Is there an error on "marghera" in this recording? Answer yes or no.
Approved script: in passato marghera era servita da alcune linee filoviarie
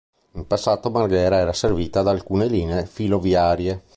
no